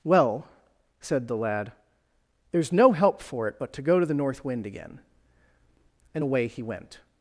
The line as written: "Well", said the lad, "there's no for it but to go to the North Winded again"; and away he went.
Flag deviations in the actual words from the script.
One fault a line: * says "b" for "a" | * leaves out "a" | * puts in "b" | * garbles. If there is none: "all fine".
* puts in "help"
* says "Wind" for "Winded"